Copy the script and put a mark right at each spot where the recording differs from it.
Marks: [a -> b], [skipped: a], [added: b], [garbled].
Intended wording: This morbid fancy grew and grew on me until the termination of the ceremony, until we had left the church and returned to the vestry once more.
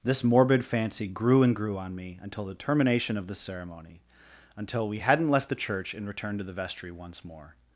This morbid fancy grew and grew on me until the termination of the ceremony, until we [had -> hadn't] left the church and returned to the vestry once more.